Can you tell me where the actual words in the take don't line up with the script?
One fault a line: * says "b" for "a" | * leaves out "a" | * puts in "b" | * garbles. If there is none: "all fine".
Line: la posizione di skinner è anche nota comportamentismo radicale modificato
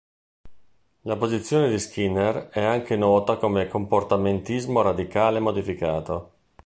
* puts in "come"